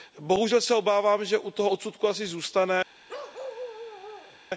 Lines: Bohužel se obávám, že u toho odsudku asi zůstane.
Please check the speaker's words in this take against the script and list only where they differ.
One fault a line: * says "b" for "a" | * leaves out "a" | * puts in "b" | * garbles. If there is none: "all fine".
all fine